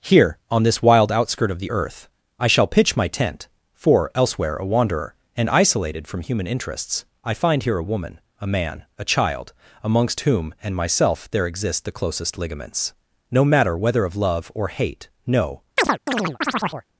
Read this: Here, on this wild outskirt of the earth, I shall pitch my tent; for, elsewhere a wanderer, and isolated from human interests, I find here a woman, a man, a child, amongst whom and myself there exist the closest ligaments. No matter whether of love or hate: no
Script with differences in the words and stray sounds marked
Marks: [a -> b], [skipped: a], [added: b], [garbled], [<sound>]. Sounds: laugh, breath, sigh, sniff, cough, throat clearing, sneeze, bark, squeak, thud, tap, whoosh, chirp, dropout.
Here, on this wild outskirt of the earth, I shall pitch my tent; for, elsewhere a wanderer, and isolated from human interests, I find here a woman, a man, a child, amongst whom and myself there exist the closest ligaments. No matter whether of love or hate: no [chirp]